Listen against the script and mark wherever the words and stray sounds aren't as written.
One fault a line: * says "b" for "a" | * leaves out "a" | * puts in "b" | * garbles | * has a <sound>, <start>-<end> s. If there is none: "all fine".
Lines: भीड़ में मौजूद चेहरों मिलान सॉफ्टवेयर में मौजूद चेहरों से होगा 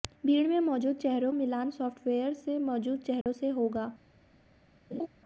* has a dropout, 3.2-3.3 s
* has a laugh, 4.9-5.1 s